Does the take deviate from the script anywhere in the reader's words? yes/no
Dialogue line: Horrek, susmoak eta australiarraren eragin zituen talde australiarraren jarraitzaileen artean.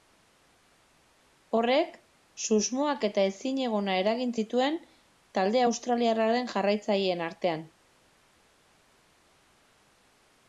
yes